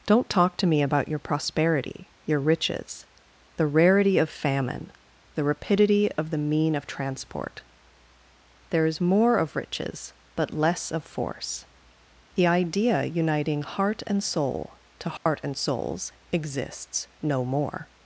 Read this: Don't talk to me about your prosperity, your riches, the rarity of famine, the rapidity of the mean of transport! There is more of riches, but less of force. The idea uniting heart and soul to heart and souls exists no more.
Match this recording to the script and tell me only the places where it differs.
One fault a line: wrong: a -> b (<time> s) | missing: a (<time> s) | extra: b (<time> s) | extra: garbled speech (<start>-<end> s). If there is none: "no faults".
no faults